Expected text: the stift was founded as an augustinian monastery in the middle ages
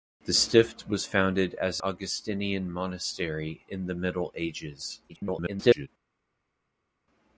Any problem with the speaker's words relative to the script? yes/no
yes